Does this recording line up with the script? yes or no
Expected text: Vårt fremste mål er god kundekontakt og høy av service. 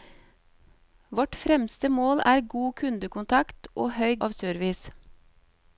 yes